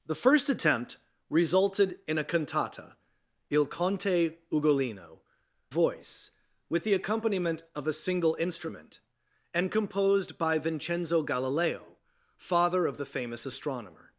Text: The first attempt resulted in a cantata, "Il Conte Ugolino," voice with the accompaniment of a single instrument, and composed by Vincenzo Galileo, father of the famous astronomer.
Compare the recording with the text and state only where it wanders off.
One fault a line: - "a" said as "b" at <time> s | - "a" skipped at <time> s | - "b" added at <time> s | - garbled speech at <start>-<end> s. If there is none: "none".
none